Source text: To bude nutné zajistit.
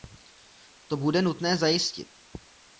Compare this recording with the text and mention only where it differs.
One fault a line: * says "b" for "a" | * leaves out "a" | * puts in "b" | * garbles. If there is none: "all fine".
all fine